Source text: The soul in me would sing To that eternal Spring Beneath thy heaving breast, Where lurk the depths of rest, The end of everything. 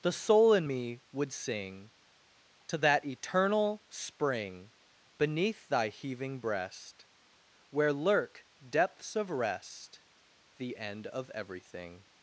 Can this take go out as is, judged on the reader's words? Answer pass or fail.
fail